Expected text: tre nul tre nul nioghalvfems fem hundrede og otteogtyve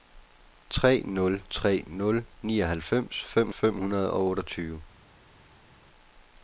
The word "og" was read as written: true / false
true